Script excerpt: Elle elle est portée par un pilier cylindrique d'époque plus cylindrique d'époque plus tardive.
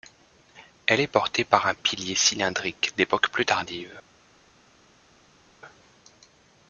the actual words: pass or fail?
fail